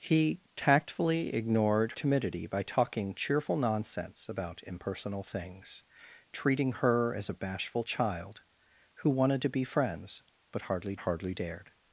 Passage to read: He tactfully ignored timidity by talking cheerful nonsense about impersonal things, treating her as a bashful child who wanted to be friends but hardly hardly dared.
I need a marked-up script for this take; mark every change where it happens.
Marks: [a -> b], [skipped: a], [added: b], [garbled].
He tactfully ignored timidity by talking cheerful nonsense about impersonal things, treating her as a bashful child who wanted to be friends but hardly hardly dared.